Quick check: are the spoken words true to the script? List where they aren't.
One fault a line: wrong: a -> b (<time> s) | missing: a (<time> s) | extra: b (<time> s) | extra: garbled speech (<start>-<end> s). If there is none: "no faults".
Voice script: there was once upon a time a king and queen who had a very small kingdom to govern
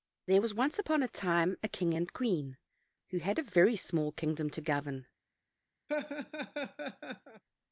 no faults